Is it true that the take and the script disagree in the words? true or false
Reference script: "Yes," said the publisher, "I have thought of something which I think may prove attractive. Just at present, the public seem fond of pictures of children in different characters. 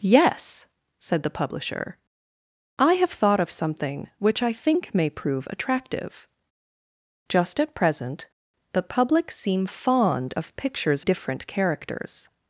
true